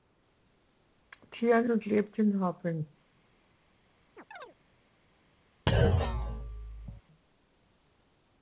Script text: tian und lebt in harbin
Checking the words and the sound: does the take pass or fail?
fail